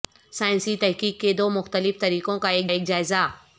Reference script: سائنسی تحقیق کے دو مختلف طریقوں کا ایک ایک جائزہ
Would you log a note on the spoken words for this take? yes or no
no